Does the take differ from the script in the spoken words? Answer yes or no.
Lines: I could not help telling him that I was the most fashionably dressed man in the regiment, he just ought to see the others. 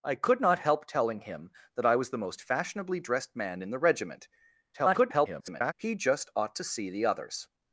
yes